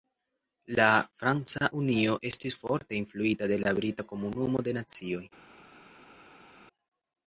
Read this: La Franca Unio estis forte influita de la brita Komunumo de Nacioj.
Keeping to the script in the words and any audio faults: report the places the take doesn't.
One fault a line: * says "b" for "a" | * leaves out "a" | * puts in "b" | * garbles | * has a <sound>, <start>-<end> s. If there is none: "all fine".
all fine